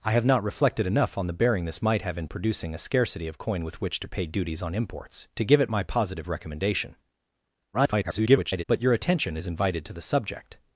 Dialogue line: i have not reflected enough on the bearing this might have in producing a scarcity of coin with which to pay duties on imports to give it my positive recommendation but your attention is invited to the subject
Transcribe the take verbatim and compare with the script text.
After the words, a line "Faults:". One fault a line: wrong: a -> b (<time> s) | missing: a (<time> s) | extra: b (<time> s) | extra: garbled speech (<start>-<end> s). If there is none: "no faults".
i have not reflected enough on the bearing this might have in producing a scarcity of coin with which to pay duties on imports to give it my positive recommendation [garbled] but your attention is invited to the subject
Faults:
extra: garbled speech (7.7-8.6 s)